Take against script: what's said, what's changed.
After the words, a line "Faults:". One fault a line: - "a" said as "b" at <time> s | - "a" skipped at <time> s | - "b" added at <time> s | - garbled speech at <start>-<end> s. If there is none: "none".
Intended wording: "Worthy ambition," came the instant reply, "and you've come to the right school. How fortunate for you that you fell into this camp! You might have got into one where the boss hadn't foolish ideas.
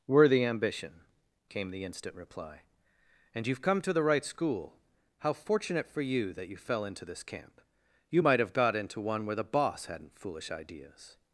"Worthy ambition," came the instant reply, "and you've come to the right school. How fortunate for you that you fell into this camp! You might have got into one where the boss hadn't foolish ideas.
Faults:
none